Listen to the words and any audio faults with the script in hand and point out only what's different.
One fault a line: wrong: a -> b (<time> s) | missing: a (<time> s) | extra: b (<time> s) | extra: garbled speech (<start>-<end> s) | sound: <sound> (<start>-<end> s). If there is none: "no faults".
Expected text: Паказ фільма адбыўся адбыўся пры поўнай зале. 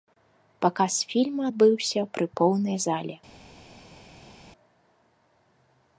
missing: адбыўся (2.0 s)